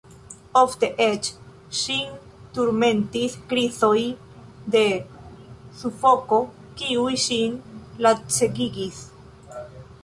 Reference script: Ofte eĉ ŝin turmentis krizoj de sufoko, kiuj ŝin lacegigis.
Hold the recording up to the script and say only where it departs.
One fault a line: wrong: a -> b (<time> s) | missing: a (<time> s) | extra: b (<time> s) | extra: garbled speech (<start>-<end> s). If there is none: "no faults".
no faults